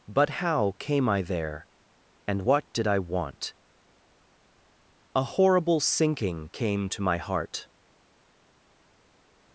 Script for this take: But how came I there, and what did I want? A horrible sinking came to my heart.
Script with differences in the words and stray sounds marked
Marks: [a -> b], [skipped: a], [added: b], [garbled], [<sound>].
But how came I there, and what did I want? A horrible sinking came to my heart.